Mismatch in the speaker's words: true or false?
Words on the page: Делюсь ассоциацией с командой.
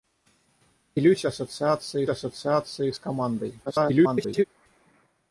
true